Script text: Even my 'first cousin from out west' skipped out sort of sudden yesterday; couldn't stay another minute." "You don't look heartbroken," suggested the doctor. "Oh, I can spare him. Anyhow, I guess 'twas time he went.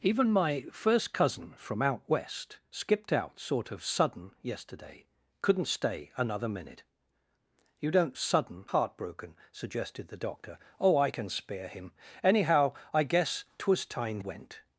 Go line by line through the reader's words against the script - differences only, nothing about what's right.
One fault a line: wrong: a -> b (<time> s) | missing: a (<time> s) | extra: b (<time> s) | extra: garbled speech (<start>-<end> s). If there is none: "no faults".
wrong: look -> sudden (8.2 s)
missing: he (14.2 s)